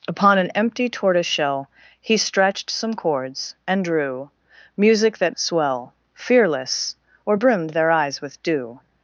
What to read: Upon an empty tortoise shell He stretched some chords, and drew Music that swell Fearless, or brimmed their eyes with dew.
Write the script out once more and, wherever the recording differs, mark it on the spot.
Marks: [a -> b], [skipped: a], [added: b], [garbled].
Upon an empty tortoise shell He stretched some chords, and drew Music that swell Fearless, or brimmed their eyes with dew.